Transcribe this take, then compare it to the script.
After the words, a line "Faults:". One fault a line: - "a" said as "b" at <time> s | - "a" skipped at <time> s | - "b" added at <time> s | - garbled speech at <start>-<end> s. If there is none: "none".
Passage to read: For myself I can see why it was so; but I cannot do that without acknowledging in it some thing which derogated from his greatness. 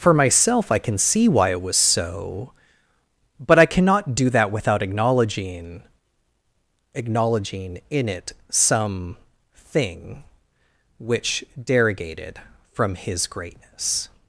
For myself I can see why it was so; but I cannot do that without acknowledging acknowledging in it some thing which derogated from his greatness.
Faults:
- "acknowledging" added at 7.0 s